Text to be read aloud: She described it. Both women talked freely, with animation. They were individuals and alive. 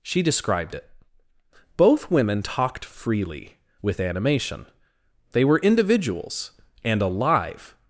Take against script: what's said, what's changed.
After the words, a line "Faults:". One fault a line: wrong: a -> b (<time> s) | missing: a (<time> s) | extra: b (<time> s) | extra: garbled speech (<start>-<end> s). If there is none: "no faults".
She described it. Both women talked freely, with animation. They were individuals and alive.
Faults:
no faults